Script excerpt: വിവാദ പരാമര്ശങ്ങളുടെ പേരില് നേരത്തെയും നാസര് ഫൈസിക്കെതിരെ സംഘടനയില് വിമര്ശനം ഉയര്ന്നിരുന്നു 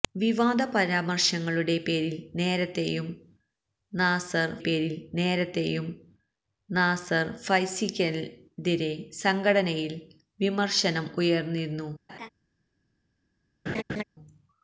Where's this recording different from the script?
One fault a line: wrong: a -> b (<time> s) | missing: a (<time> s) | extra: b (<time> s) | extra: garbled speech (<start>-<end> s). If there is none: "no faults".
extra: പേരില് നേരത്തെയും നാസര് (4.6 s)